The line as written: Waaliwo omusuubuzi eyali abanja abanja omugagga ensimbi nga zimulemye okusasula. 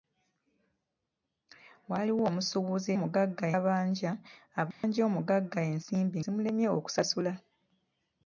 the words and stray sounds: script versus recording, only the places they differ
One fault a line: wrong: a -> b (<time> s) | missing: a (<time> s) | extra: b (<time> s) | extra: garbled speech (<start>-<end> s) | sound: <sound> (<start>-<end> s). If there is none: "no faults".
wrong: eyali -> omugagga (2.9 s)
sound: dropout (4.7-4.8 s)
missing: nga (6.2 s)